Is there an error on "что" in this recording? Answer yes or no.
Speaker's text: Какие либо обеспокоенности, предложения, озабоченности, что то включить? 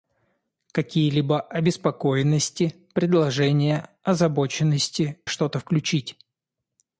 no